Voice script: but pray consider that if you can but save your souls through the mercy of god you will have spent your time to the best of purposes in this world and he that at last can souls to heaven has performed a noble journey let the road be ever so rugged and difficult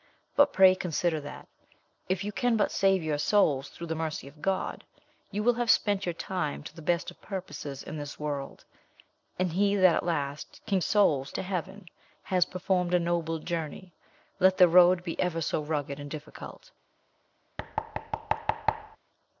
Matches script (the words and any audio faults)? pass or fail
fail